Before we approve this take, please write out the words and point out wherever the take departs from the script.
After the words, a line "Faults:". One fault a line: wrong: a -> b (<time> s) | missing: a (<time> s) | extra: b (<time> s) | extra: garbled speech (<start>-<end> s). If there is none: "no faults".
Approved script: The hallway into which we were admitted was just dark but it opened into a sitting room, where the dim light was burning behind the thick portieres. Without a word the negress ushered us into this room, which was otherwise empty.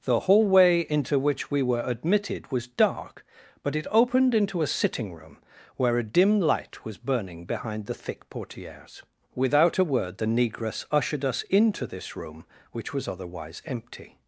The hallway into which we were admitted was dark but it opened into a sitting room, where a dim light was burning behind the thick portieres. Without a word the negress ushered us into this room, which was otherwise empty.
Faults:
missing: just (2.6 s)
wrong: the -> a (6.0 s)